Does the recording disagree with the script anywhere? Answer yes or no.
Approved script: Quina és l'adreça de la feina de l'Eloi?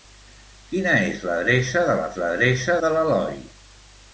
yes